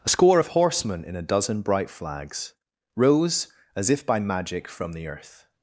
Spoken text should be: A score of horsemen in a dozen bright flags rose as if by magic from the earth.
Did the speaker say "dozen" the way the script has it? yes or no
yes